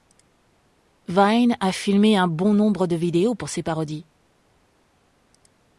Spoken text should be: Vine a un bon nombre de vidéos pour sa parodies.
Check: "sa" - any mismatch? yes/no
yes